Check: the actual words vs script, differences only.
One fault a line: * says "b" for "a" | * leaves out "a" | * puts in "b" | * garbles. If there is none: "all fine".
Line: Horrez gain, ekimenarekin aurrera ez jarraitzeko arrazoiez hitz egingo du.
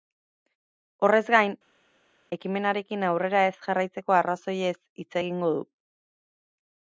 all fine